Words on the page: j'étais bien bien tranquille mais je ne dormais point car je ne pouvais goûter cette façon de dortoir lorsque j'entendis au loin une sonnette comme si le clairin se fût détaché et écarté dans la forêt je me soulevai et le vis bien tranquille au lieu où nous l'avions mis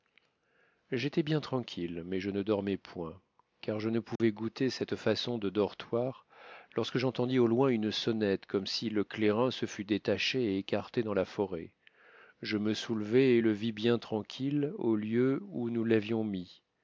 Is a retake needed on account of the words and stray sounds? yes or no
yes